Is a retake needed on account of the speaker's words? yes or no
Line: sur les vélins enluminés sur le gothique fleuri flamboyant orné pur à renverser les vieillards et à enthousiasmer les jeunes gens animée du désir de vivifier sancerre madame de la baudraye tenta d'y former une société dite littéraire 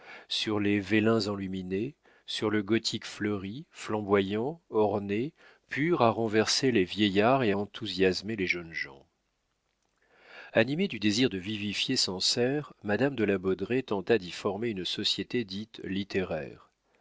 no